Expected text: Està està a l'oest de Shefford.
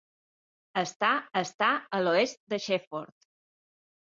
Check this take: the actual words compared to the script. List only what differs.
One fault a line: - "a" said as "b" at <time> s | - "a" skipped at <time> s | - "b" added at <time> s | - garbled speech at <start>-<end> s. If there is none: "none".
none